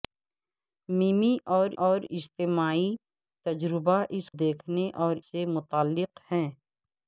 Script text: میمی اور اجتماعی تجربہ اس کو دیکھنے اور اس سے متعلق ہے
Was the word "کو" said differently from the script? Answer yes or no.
yes